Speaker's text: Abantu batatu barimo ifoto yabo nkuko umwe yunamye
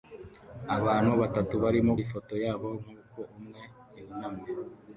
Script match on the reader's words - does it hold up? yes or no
yes